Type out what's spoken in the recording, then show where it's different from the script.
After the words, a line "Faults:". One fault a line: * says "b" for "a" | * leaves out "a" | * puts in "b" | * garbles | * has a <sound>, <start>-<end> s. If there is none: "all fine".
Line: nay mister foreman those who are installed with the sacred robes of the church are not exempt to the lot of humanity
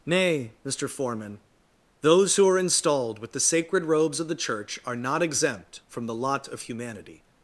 nay mister foreman those who are installed with the sacred robes of the church are not exempt from the lot of humanity
Faults:
* says "from" for "to"